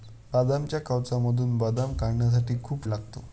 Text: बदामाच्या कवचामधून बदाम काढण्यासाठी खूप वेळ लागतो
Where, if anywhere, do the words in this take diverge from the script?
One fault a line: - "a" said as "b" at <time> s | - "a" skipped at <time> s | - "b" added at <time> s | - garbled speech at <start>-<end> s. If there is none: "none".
- "वेळ" skipped at 2.9 s